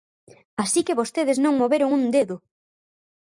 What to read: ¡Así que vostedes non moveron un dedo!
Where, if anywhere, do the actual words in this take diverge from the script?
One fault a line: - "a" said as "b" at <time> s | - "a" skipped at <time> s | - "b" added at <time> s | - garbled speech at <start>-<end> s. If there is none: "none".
none